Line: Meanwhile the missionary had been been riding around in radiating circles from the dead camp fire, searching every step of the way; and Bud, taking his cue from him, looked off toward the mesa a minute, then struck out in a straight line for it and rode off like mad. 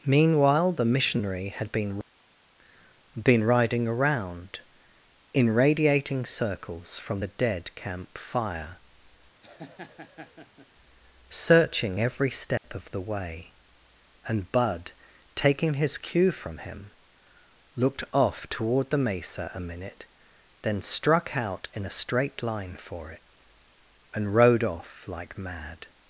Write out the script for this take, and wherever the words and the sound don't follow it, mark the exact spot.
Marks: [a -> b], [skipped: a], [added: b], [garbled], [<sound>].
Meanwhile the missionary had been been riding around in radiating circles from the dead camp fire, [laugh] searching every step [dropout] of the way; and Bud, taking his cue from him, looked off toward the mesa a minute, then struck out in a straight line for it and rode off like mad.